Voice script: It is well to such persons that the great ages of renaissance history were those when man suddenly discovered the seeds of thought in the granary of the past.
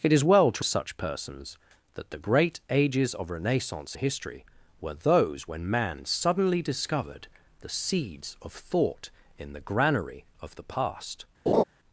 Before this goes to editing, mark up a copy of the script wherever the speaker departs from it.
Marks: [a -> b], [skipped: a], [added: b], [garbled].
It is well to such persons that the great ages of renaissance history were those when man suddenly discovered the seeds of thought in the granary of the past.